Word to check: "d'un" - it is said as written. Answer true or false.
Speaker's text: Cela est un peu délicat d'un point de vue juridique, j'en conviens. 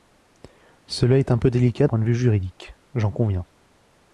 false